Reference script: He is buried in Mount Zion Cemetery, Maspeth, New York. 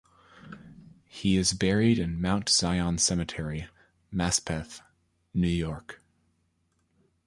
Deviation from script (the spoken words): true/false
false